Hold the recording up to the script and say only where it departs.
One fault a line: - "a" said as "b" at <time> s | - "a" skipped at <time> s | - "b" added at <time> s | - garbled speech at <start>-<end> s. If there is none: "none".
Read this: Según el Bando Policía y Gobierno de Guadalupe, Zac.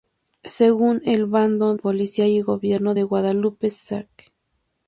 none